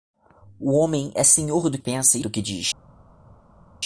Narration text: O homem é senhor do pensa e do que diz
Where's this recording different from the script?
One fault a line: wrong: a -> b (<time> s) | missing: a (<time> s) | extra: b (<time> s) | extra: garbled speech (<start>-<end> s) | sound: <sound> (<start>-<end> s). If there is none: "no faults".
no faults